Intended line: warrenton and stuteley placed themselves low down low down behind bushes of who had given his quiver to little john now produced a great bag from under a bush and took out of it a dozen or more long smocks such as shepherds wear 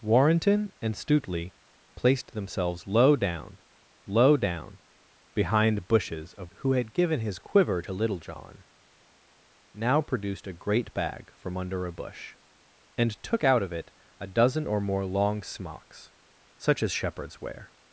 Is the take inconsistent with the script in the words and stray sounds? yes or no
no